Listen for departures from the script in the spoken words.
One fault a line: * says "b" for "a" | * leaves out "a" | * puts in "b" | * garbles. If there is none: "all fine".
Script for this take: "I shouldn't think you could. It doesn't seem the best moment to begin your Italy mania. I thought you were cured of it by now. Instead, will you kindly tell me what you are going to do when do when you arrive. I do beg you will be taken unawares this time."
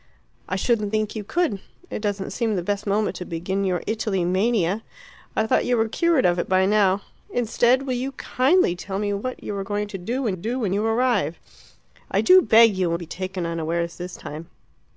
all fine